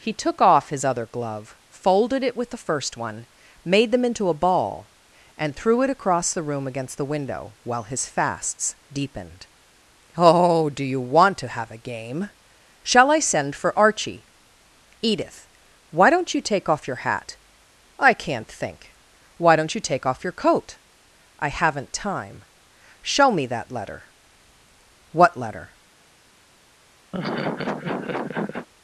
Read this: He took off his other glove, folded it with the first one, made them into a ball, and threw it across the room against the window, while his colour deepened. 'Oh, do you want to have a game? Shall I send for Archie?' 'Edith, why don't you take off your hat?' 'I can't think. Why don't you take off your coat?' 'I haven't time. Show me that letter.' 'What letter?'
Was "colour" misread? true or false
true